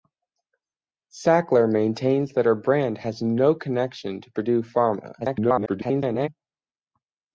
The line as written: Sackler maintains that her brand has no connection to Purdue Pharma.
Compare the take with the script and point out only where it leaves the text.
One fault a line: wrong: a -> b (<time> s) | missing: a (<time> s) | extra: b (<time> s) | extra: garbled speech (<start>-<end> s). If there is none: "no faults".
extra: garbled speech (5.2-6.3 s)